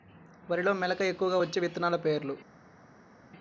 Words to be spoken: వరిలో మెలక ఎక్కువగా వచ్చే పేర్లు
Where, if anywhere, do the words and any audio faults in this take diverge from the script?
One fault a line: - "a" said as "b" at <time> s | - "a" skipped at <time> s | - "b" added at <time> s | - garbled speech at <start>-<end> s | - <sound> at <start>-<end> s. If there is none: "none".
- "విత్తనాలు" added at 1.6 s